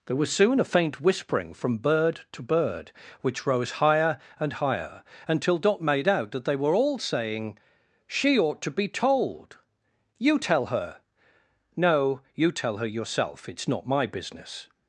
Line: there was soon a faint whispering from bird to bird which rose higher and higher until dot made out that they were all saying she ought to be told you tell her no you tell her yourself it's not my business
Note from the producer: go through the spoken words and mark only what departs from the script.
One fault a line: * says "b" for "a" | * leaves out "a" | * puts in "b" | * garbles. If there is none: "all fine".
all fine